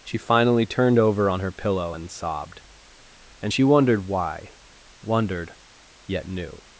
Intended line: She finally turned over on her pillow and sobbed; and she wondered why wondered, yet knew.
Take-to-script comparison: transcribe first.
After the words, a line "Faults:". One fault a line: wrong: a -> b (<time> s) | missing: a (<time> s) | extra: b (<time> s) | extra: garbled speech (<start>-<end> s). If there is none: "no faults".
She finally turned over on her pillow and sobbed; and she wondered why wondered, yet knew.
Faults:
no faults